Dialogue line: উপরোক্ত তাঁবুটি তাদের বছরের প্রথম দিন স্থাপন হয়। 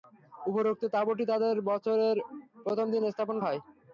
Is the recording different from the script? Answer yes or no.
no